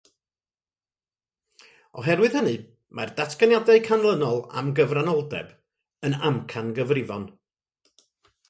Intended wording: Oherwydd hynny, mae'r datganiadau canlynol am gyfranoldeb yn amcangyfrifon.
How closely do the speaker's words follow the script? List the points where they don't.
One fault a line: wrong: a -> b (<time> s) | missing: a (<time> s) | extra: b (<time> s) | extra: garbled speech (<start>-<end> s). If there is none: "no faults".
no faults